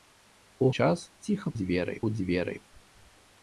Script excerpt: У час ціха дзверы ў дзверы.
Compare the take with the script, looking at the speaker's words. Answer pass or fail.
pass